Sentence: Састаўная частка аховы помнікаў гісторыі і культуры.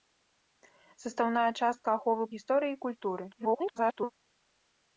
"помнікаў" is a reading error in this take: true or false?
true